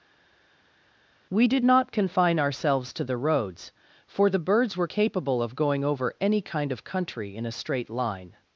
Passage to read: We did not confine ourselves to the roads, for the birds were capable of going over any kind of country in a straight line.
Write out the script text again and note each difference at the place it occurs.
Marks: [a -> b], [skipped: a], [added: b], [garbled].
We did not confine ourselves to the roads, for the birds were capable of going over any kind of country in a straight line.